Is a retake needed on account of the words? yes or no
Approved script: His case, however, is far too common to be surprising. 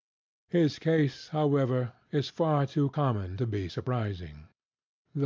no